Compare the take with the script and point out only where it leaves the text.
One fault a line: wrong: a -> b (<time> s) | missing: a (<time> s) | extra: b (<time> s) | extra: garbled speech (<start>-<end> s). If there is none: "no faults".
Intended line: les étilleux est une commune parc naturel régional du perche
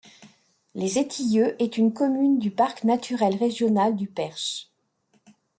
extra: du (2.4 s)